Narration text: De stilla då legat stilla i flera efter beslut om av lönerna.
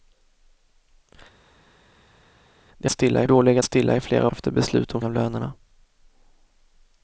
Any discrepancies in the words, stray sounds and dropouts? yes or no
no